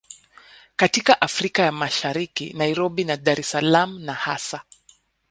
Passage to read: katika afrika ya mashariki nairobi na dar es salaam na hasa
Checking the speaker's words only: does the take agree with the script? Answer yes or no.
yes